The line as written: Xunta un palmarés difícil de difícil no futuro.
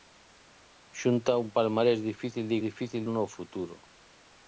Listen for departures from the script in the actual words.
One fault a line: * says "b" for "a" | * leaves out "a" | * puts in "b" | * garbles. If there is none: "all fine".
all fine